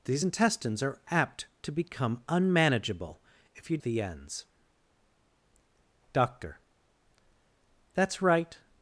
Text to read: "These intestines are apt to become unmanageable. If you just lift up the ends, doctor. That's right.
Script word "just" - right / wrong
wrong